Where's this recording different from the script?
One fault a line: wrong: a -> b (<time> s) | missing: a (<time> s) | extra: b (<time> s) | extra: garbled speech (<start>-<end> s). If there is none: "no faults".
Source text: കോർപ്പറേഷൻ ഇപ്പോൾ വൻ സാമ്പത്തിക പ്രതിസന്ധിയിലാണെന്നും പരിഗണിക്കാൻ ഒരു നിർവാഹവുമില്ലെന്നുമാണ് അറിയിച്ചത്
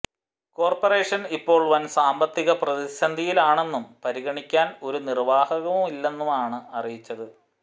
no faults